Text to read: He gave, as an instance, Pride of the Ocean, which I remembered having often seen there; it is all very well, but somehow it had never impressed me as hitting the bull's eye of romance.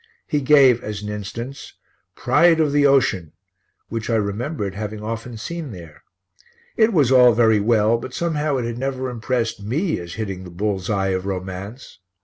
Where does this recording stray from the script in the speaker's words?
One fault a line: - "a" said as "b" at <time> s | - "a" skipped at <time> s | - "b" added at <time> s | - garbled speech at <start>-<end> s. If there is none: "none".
- "is" said as "was" at 6.9 s